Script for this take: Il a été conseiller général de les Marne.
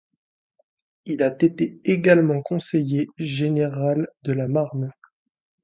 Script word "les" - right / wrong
wrong